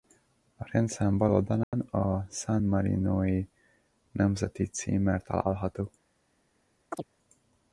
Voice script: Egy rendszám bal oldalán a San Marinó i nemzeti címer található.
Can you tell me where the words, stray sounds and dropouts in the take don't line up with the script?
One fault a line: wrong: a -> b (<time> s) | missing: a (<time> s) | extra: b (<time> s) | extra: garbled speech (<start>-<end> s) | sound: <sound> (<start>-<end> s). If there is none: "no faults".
wrong: Egy -> A (0.6 s)
sound: dropout (1.6-1.7 s)
sound: chirp (6.9-7.0 s)